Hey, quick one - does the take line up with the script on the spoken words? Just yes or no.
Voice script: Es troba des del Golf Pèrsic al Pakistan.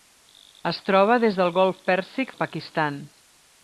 yes